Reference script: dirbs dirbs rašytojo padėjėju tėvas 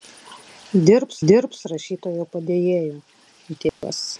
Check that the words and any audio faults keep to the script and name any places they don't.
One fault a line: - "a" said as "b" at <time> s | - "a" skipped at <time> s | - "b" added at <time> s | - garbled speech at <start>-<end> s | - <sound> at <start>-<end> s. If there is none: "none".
- dropout at 3.7-3.8 s